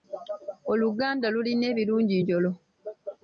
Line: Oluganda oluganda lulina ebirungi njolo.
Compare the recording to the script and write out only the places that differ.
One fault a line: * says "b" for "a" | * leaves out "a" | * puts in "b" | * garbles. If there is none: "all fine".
* leaves out "oluganda"